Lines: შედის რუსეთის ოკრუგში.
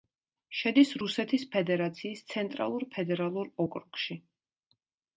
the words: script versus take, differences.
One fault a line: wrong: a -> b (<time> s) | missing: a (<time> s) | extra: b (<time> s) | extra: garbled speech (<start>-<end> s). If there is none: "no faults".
extra: ფედერაციის ცენტრალურ ფედერალურ (1.6 s)